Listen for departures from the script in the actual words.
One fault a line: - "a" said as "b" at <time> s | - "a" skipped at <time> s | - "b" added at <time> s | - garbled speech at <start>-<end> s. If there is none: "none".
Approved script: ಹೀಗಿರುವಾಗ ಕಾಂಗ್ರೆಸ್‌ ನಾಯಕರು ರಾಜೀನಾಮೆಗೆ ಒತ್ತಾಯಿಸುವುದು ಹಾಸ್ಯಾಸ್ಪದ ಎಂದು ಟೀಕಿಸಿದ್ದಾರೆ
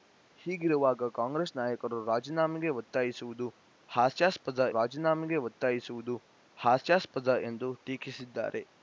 - "ರಾಜೀನಾಮೆಗೆ ಒತ್ತಾಯಿಸುವುದು ಹಾಸ್ಯಾಸ್ಪದ" added at 4.7 s